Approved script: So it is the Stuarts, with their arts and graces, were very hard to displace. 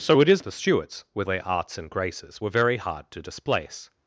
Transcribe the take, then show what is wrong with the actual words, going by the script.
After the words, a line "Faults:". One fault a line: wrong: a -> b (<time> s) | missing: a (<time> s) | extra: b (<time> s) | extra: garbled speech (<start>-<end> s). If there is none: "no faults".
So it is the Stuarts, with their arts and graces, were very hard to displace.
Faults:
no faults